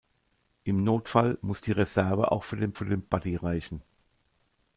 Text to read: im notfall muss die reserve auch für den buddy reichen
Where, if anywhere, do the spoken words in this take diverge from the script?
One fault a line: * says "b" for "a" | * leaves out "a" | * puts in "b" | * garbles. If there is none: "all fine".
* puts in "für den"